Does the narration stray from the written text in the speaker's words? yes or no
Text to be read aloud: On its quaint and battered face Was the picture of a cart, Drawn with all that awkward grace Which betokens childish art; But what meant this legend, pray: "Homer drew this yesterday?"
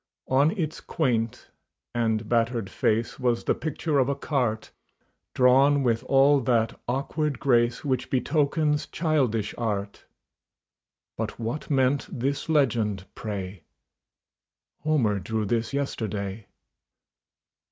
no